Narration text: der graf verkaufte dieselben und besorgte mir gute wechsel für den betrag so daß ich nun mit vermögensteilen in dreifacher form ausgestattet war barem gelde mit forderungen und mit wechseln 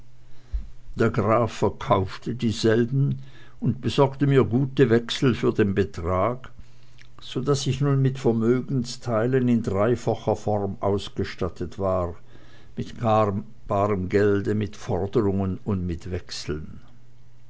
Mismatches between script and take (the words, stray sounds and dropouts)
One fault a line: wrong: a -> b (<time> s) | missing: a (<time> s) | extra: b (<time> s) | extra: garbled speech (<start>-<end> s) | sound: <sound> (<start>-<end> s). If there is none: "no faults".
extra: mit (12.8 s)